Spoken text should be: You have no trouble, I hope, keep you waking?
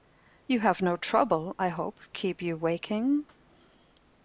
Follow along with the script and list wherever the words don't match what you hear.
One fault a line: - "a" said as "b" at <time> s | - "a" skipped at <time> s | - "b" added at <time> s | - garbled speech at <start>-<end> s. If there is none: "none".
none